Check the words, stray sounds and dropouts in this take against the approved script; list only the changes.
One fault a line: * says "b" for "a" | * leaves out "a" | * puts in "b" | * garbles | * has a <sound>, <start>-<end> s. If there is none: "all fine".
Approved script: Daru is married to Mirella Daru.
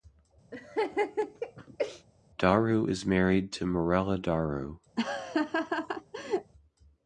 * has a laugh, 0.5-2.1 s
* has a laugh, 5.0-6.5 s